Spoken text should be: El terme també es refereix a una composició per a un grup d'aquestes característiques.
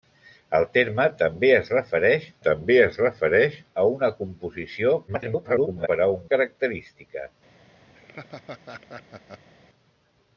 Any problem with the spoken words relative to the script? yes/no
yes